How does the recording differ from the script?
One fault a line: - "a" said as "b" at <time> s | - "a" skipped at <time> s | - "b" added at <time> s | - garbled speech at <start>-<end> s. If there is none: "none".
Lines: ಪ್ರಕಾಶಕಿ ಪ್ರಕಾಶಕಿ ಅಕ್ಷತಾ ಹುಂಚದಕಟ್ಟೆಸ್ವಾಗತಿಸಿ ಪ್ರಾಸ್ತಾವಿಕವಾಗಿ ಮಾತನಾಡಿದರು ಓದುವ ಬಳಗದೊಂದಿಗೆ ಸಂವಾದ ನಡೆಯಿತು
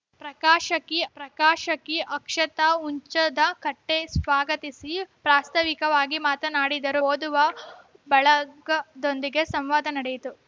none